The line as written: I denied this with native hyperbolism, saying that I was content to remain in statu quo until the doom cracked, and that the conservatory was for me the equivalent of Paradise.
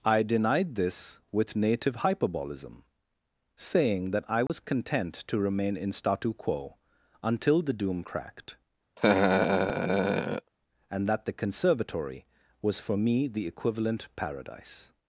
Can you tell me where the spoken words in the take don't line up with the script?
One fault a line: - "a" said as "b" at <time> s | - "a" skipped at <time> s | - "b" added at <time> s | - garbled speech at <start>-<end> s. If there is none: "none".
- "of" skipped at 14.1 s